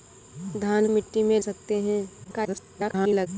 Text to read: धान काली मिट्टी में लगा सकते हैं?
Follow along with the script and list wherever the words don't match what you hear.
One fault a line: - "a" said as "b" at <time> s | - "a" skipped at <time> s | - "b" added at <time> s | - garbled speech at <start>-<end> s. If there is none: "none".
- "काली" skipped at 0.9 s
- "लगा" skipped at 1.4 s
- garbled speech at 2.2-3.3 s